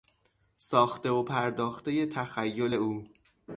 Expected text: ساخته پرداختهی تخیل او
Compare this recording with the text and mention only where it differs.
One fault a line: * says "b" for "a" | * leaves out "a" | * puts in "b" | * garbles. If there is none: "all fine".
* puts in "و"